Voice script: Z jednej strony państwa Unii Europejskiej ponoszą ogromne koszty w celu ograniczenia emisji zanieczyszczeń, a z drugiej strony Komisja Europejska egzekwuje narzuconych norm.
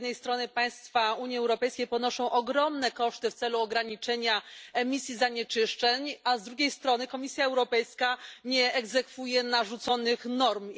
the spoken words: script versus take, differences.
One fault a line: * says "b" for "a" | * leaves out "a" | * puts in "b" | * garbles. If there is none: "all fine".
* puts in "nie"